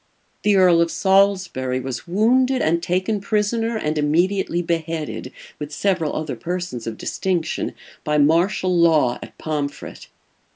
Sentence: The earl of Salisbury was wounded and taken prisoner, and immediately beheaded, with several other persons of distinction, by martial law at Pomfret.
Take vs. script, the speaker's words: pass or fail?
pass